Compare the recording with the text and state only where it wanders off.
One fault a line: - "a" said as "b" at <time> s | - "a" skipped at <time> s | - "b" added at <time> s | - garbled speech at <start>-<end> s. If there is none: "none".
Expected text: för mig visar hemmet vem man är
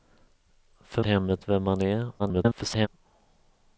- "mig visar" skipped at 1.0 s
- garbled speech at 2.2-2.9 s